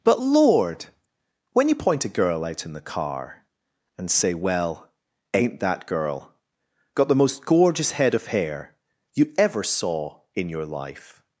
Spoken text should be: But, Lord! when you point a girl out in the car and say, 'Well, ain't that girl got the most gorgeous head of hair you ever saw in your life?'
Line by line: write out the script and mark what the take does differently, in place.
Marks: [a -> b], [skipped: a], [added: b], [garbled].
But, Lord! when you point a girl out in the car and say, 'Well, ain't that girl got the most gorgeous head of hair you ever saw in your life?'